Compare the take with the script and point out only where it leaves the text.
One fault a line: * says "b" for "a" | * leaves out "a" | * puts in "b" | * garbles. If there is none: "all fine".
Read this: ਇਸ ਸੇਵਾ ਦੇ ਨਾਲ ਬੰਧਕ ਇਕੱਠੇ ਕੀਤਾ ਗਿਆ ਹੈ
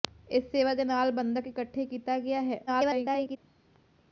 * garbles